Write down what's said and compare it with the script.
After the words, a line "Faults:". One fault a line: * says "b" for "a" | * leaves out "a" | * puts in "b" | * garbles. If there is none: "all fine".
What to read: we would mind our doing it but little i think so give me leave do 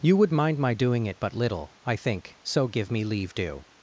you would mind my doing it but little i think so give me leave do
Faults:
* says "you" for "we"
* says "my" for "our"